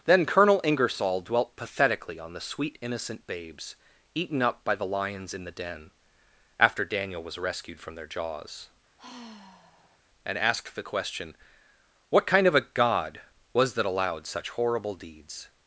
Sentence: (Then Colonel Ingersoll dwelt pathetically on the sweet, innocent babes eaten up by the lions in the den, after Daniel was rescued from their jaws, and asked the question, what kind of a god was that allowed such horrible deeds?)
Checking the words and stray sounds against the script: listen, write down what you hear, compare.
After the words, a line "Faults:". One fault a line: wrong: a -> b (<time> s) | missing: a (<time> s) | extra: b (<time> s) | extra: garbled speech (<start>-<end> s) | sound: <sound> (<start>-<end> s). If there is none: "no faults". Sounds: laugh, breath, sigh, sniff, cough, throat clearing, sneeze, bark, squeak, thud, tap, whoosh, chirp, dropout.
(Then Colonel Ingersoll dwelt pathetically on the sweet, innocent babes eaten up by the lions in the den, after Daniel was rescued from their jaws, and asked the question, what kind of a god was that allowed such horrible deeds?)
Faults:
sound: sigh (9.0-10.0 s)